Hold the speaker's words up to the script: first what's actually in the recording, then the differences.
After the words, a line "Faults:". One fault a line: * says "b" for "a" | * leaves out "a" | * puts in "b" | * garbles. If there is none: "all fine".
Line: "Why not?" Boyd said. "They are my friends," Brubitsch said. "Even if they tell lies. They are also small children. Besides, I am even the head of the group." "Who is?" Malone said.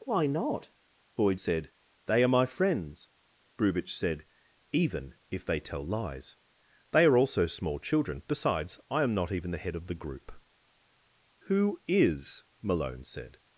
"Why not?" Boyd said. "They are my friends," Brubitsch said. "Even if they tell lies. They are also small children. Besides, I am not even the head of the group." "Who is?" Malone said.
Faults:
* puts in "not"